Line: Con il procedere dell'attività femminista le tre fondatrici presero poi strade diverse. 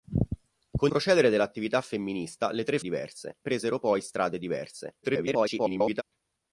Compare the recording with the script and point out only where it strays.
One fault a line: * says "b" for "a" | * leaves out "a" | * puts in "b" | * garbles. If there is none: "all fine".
* leaves out "il"
* says "diverse" for "fondatrici"
* garbles